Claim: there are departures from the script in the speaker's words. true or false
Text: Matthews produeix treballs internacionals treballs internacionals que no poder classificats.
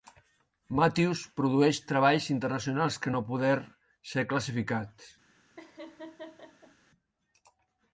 true